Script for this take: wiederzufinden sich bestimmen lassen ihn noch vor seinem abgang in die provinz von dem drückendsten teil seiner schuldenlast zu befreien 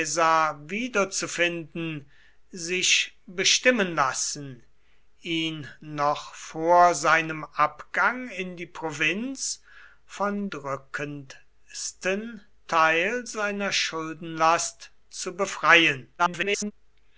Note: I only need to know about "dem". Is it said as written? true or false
false